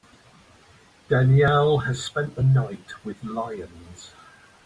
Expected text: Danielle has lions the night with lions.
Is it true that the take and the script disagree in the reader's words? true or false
true